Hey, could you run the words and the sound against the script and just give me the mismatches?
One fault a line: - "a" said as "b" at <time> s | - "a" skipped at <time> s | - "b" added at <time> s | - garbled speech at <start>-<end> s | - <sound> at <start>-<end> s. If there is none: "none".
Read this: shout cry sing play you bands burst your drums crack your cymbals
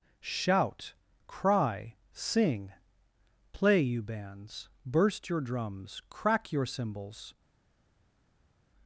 none